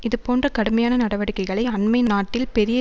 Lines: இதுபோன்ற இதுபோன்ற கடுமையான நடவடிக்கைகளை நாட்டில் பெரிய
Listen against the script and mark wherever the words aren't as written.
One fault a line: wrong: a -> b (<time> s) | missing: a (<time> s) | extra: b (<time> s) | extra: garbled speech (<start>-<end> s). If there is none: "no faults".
missing: இதுபோன்ற (0.5 s)
extra: அண்மை (1.7 s)